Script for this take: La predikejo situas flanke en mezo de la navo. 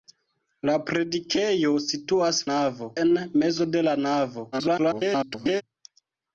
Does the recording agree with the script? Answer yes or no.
no